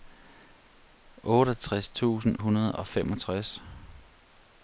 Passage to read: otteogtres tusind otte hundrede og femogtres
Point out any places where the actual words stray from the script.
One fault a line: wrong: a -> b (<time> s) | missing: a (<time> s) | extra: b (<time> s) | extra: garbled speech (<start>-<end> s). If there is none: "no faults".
missing: otte (2.4 s)